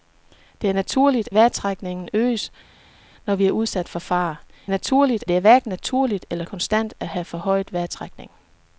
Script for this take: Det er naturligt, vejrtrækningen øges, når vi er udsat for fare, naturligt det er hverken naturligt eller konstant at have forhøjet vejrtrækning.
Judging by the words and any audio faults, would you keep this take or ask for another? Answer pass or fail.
pass